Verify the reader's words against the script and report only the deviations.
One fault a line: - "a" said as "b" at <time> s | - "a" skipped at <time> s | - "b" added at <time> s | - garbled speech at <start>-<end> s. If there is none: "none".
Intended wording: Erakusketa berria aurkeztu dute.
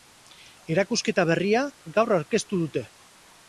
- "gaur" added at 2.0 s